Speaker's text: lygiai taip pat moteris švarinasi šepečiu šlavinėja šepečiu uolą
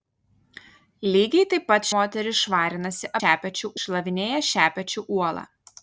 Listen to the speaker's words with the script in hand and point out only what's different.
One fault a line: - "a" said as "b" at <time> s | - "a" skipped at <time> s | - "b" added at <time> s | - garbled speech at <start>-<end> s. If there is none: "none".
none